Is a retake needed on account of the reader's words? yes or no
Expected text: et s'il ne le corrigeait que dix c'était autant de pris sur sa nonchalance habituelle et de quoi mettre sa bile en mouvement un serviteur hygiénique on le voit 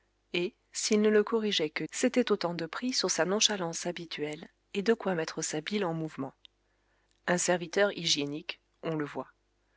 yes